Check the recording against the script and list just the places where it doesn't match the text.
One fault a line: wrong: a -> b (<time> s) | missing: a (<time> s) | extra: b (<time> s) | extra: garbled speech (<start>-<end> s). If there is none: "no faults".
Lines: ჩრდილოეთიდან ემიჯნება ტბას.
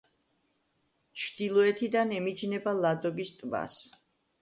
extra: ლადოგის (2.8 s)